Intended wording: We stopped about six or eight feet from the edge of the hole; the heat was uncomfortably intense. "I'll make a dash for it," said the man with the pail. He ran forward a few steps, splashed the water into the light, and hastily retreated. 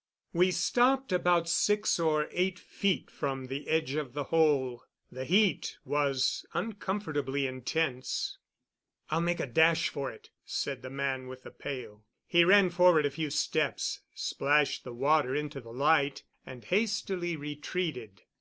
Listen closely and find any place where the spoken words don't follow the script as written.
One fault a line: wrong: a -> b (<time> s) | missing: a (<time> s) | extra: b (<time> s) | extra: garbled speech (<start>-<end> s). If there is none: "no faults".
no faults